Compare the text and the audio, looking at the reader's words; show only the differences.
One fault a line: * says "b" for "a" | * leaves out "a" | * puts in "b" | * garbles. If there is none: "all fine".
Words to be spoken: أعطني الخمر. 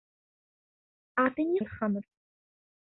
all fine